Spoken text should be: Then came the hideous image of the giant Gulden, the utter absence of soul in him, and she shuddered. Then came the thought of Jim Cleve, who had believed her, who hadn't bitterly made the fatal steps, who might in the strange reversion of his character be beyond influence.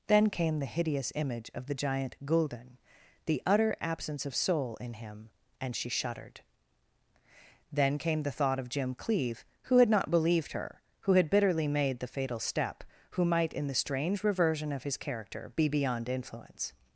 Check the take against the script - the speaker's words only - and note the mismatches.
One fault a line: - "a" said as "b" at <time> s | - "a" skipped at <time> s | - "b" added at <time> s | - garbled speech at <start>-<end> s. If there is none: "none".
- "not" added at 9.9 s
- "hadn't" said as "had" at 11.1 s
- "steps" said as "step" at 12.4 s